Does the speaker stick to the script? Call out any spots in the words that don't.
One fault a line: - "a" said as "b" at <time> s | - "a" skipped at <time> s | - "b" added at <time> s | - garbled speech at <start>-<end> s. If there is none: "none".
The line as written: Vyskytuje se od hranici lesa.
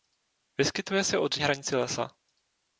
none